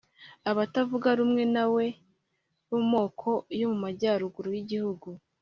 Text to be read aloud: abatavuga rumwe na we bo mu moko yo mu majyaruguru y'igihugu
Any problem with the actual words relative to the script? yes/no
no